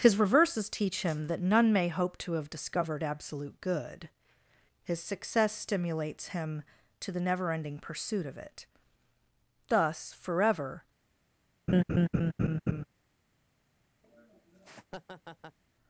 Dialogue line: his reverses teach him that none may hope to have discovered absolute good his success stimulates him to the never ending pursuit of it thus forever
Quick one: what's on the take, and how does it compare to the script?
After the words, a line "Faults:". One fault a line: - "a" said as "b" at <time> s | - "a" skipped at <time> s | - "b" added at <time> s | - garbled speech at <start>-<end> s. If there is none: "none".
his reverses teach him that none may hope to have discovered absolute good his success stimulates him to the never ending pursuit of it thus forever
Faults:
none